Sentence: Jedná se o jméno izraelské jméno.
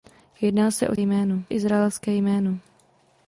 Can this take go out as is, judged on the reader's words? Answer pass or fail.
pass